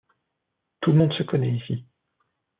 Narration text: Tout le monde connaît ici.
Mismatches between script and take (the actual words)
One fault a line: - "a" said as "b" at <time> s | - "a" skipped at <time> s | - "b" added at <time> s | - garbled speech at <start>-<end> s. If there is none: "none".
- "se" added at 1.1 s